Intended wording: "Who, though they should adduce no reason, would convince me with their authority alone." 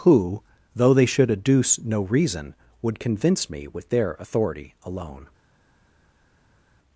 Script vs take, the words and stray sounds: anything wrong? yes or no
no